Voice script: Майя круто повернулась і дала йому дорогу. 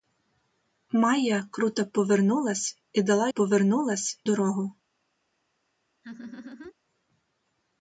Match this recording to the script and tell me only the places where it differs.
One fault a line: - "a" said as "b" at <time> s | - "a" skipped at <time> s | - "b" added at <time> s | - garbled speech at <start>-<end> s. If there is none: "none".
- "йому" said as "повернулась" at 3.3 s